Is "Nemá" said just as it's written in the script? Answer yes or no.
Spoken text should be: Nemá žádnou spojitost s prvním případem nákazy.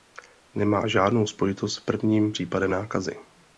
yes